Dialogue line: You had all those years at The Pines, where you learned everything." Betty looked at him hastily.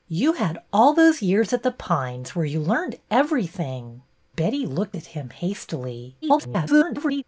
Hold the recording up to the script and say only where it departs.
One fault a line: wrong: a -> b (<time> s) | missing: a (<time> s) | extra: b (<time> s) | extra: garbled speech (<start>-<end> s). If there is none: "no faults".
extra: garbled speech (6.2-7.2 s)